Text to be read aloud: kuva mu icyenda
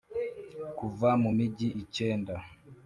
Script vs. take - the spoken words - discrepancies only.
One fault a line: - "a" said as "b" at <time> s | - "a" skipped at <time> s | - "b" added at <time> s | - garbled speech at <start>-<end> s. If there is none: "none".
- "migi" added at 1.4 s